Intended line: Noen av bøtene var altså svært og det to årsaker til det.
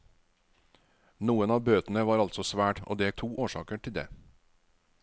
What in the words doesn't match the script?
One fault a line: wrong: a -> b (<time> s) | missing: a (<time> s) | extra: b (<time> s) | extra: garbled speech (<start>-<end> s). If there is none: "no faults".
no faults